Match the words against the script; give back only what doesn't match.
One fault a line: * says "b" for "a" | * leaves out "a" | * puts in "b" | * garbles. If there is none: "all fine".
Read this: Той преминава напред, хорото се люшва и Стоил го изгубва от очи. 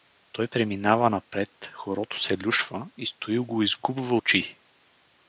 * leaves out "от"